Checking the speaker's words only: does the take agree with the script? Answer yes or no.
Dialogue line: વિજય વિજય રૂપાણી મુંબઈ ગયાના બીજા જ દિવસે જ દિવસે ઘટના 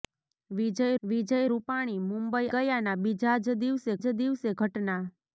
yes